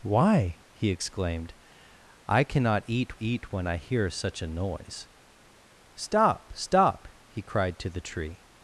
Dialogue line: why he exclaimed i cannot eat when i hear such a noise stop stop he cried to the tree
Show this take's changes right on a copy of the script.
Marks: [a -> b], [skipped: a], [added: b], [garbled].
why he exclaimed i cannot eat [added: eat] when i hear such a noise stop stop he cried to the tree